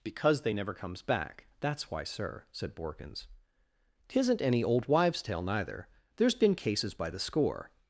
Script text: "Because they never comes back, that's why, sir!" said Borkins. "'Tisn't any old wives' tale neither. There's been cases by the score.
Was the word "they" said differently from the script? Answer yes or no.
no